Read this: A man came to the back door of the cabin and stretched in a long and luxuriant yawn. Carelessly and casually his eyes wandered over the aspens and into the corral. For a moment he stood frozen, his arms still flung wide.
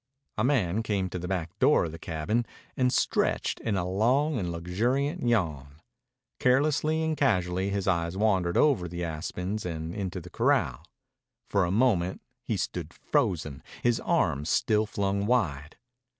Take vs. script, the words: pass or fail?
pass